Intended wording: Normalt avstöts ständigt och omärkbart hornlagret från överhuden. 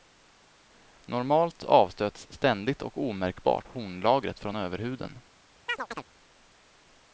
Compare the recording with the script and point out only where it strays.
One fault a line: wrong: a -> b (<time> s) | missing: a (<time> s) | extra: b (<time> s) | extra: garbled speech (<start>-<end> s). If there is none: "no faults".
no faults